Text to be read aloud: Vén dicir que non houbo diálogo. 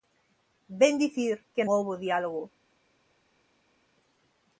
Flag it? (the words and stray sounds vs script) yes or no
yes